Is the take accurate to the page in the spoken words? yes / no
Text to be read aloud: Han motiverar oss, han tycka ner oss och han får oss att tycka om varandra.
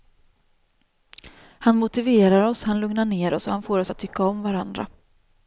no